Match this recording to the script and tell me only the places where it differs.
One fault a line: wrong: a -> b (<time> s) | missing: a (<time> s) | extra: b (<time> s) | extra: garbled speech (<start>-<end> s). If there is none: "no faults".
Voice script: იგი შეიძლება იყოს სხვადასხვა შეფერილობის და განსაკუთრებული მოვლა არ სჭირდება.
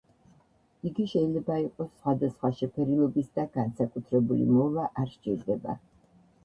no faults